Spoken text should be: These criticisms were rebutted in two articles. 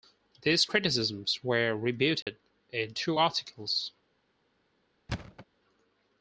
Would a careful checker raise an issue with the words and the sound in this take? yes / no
yes